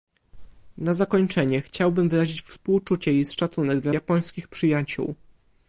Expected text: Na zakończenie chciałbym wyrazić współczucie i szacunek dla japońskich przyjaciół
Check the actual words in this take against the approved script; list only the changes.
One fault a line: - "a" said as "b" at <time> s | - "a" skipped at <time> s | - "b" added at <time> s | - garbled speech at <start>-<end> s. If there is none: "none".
none